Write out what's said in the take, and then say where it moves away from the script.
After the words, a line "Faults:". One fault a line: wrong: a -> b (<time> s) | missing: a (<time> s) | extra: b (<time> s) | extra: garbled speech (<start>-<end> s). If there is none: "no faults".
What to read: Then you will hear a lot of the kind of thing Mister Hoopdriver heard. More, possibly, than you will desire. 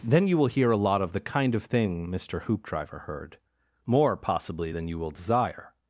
Then you will hear a lot of the kind of thing Mister Hoopdriver heard. More, possibly, than you will desire.
Faults:
no faults